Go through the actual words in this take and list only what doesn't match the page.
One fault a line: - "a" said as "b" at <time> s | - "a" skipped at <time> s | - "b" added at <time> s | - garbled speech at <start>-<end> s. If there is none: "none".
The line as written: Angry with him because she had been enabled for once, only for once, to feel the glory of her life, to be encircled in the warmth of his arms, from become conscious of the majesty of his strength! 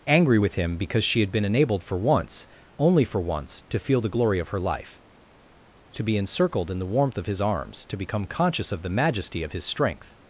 - "from" said as "to" at 7.9 s